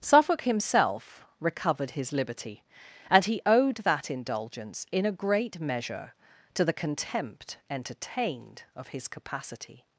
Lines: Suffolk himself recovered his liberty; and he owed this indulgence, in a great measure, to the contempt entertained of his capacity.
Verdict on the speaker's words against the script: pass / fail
fail